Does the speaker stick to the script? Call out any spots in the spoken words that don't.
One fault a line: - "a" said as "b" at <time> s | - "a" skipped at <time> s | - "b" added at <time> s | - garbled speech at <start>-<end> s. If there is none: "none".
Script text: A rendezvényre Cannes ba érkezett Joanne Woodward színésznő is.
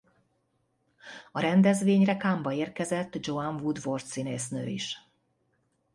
none